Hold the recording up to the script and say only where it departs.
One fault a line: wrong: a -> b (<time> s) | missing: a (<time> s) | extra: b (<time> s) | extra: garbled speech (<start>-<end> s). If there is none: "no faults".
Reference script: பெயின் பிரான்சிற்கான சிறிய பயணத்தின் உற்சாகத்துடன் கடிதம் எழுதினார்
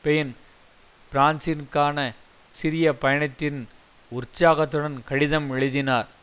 no faults